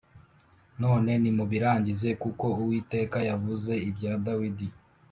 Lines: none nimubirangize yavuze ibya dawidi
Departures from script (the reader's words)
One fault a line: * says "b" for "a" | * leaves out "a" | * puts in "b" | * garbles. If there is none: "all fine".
* puts in "kuko uwiteka"